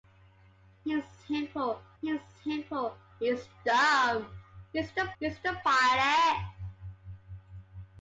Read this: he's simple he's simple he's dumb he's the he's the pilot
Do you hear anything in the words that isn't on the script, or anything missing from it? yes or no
no